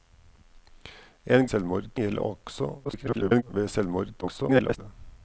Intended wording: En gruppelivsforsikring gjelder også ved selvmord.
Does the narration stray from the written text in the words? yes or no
yes